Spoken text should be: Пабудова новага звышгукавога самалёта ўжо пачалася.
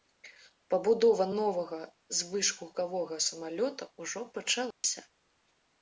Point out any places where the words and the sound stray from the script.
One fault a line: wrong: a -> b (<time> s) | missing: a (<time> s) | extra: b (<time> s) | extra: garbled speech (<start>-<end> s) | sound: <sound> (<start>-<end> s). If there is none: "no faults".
sound: dropout (4.7-4.8 s)